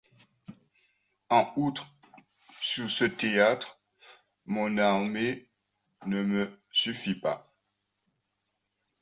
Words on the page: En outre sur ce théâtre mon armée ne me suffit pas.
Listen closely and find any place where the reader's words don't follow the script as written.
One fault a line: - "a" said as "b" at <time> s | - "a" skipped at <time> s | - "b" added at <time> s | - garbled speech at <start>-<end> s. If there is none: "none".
none